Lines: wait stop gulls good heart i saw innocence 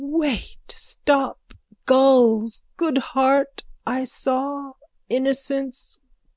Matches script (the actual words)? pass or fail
pass